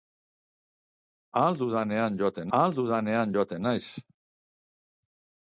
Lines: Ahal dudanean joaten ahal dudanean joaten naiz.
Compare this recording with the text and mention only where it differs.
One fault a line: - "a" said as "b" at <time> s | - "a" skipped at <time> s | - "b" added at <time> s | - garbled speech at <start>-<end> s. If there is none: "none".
none